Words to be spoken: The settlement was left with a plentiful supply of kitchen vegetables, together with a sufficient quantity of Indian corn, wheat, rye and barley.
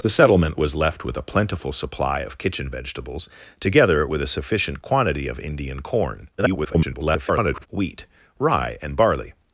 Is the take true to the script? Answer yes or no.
no